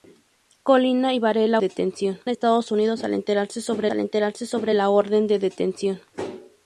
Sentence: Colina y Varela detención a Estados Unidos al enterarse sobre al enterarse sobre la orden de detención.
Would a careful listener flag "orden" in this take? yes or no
no